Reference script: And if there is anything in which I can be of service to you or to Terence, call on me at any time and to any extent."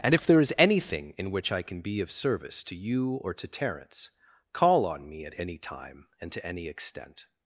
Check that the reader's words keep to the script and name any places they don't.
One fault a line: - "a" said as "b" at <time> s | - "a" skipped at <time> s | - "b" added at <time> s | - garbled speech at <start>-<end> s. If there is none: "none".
none